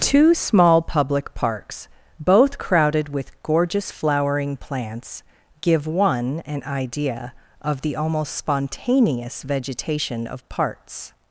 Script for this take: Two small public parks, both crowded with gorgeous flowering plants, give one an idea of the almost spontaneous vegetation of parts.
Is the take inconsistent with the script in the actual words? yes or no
no